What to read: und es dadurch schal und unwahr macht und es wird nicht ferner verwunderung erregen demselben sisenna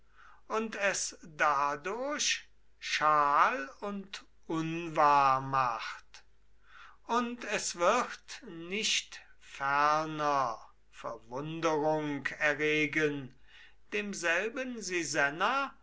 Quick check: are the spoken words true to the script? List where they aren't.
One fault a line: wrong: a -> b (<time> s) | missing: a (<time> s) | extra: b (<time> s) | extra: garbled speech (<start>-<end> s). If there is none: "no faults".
no faults